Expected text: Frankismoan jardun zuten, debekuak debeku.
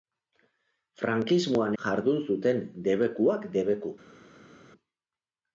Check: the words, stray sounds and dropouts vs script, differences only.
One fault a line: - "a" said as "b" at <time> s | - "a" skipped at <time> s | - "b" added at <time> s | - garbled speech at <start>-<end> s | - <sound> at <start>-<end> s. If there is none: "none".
none